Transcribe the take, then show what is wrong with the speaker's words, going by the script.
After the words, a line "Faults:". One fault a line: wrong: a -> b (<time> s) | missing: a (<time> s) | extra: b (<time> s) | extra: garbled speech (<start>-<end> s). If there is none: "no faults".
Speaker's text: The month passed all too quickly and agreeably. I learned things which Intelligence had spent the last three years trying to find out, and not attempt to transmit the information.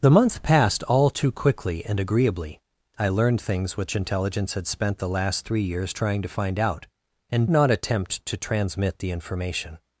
The month passed all too quickly and agreeably. I learned things which Intelligence had spent the last three years trying to find out, and not attempt to transmit the information.
Faults:
no faults